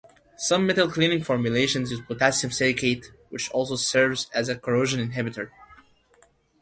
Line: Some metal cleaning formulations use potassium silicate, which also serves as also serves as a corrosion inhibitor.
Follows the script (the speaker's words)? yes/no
no